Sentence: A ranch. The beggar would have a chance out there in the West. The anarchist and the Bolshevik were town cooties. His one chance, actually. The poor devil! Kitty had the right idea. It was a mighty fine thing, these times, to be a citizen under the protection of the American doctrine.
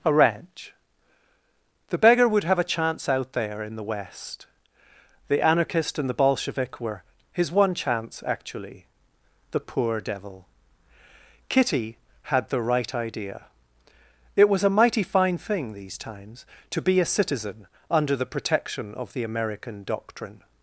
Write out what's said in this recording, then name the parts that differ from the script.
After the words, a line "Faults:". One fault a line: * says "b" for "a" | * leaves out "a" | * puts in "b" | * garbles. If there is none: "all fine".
A ranch. The beggar would have a chance out there in the West. The anarchist and the Bolshevik were. His one chance, actually. The poor devil! Kitty had the right idea. It was a mighty fine thing, these times, to be a citizen under the protection of the American doctrine.
Faults:
* leaves out "town cooties"